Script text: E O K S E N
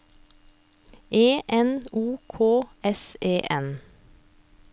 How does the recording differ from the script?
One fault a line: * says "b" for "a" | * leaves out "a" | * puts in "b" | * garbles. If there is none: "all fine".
* puts in "N"